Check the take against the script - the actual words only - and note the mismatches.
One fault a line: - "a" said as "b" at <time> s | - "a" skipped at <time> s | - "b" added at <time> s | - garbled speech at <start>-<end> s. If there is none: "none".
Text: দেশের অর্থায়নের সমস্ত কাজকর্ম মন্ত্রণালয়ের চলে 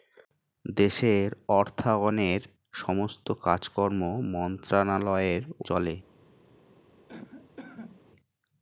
none